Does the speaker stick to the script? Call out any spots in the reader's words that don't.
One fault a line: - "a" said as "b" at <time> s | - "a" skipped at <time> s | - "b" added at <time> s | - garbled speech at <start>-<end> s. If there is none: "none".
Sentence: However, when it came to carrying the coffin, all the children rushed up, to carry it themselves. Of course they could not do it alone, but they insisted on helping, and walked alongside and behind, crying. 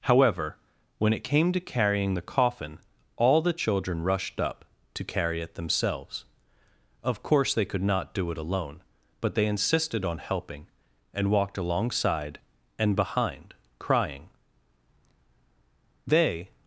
- "They" added at 16.1 s